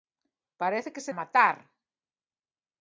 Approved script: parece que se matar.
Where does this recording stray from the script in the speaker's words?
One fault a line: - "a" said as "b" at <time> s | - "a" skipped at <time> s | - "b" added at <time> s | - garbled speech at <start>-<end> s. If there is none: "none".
none